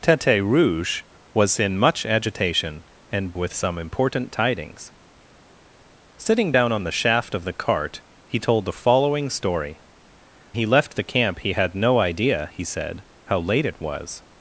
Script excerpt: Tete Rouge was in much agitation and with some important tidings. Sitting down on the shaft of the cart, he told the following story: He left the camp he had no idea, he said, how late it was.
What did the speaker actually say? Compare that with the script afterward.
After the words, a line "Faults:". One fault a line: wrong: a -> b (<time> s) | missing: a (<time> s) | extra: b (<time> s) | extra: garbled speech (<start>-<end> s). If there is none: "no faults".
Tete Rouge was in much agitation and with some important tidings. Sitting down on the shaft of the cart, he told the following story: He left the camp he had no idea, he said, how late it was.
Faults:
no faults